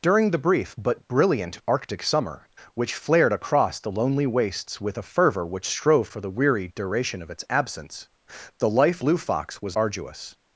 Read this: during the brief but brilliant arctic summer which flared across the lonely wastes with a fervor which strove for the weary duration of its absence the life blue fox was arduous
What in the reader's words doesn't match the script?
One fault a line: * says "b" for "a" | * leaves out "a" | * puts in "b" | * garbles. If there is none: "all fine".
all fine